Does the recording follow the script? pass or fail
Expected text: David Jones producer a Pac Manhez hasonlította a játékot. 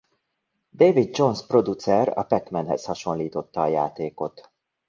pass